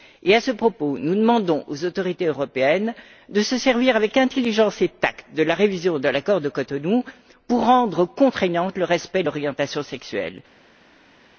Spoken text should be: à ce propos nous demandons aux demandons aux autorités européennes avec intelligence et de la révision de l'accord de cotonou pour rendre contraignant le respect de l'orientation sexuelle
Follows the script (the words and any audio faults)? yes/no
no